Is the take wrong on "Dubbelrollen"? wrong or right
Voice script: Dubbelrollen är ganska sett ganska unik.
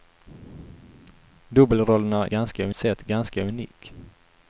right